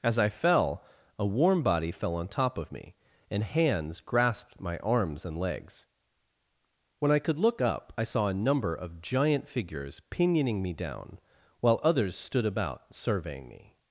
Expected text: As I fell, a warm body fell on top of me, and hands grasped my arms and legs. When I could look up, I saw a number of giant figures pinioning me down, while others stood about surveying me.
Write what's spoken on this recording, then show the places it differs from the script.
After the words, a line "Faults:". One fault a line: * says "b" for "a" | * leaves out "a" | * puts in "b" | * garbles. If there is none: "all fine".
As I fell, a warm body fell on top of me, and hands grasped my arms and legs. When I could look up, I saw a number of giant figures pinioning me down, while others stood about surveying me.
Faults:
all fine